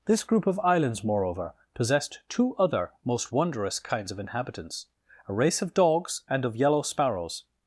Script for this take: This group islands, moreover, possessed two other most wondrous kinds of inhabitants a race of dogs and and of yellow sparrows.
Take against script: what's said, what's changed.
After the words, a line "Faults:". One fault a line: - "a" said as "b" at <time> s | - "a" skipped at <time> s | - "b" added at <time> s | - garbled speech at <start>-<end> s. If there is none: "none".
This group of islands, moreover, possessed two other most wondrous kinds of inhabitants a race of dogs and of yellow sparrows.
Faults:
- "of" added at 0.5 s
- "and" skipped at 6.5 s